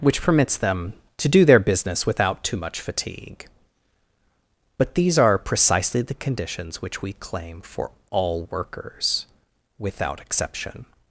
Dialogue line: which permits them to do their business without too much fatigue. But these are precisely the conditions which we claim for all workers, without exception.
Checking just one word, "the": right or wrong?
right